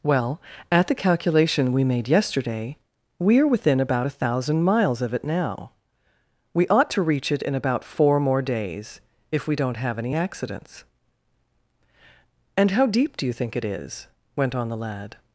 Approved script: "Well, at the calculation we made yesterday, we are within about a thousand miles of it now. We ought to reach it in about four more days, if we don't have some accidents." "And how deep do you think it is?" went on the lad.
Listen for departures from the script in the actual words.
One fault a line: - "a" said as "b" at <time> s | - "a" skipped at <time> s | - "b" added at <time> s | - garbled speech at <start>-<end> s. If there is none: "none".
- "some" said as "any" at 10.0 s